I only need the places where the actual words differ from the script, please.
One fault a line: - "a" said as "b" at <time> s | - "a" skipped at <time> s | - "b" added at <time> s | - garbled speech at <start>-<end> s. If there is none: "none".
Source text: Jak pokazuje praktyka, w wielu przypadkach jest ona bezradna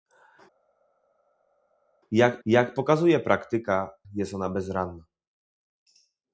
- "jak" added at 2.4 s
- "w wielu przypadkach" skipped at 3.9 s